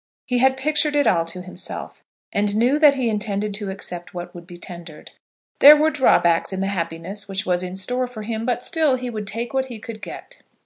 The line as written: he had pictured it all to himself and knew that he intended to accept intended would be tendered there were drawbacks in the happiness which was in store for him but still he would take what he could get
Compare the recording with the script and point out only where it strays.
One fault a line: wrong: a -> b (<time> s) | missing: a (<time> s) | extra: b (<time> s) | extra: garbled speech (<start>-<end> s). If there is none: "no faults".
wrong: intended -> what (4.2 s)